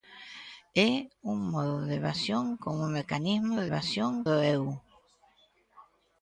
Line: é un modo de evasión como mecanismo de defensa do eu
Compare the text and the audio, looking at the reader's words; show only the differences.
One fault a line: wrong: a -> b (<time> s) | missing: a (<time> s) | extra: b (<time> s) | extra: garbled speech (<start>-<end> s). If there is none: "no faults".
wrong: defensa -> evasión (3.7 s)